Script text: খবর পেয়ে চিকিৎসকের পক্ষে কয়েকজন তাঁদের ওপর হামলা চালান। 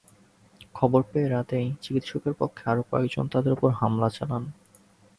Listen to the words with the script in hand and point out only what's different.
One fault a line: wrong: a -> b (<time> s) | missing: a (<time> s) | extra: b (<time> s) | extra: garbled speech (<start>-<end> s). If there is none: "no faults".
extra: রাতেই (1.3 s)
extra: আরও (2.7 s)